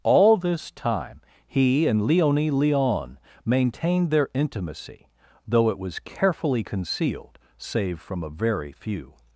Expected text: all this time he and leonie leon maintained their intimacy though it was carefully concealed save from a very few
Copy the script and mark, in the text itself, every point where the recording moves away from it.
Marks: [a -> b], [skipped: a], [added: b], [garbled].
all this time he and leonie leon maintained their intimacy though it was carefully concealed save from a very few